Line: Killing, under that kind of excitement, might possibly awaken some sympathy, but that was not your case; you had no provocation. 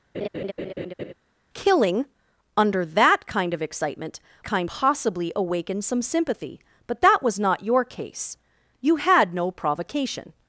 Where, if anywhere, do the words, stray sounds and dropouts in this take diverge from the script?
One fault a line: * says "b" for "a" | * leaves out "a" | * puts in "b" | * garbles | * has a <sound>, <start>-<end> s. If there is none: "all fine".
* has a laugh, 0.1-1.1 s
* says "kind" for "might"